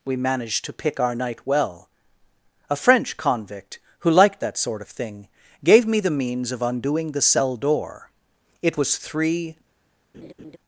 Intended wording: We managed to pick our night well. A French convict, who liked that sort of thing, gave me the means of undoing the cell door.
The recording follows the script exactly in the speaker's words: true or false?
false